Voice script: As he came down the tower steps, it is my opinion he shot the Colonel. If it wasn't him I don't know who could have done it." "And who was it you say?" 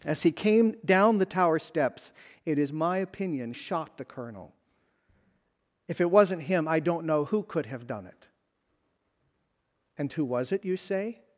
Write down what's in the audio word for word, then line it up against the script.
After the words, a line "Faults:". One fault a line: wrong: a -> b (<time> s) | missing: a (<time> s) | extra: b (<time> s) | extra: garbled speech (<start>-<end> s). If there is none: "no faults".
As he came down the tower steps, it is my opinion shot the Colonel. If it wasn't him I don't know who could have done it." "And who was it you say?"
Faults:
missing: he (3.5 s)